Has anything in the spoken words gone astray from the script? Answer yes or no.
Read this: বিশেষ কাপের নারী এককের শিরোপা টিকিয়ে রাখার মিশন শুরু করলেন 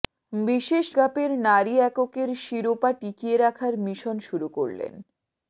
no